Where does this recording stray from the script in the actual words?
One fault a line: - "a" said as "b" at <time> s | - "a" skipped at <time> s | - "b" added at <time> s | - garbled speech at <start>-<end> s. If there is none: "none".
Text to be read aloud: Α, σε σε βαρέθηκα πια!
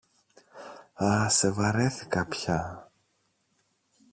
- "σε" skipped at 1.5 s